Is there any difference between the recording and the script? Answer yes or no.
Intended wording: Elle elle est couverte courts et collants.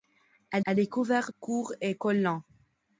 no